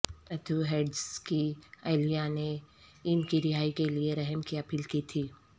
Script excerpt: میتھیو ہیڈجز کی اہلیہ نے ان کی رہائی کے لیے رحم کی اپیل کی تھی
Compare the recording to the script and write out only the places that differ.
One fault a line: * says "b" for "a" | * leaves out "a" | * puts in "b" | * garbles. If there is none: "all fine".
all fine